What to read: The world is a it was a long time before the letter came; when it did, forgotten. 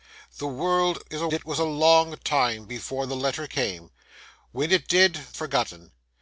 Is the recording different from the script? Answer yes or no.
no